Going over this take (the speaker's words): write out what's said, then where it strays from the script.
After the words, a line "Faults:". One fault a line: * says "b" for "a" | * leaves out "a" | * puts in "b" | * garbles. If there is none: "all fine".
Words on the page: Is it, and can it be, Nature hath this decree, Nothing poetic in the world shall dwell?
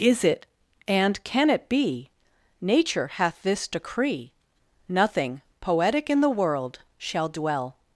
Is it, and can it be, Nature hath this decree, Nothing poetic in the world shall dwell?
Faults:
all fine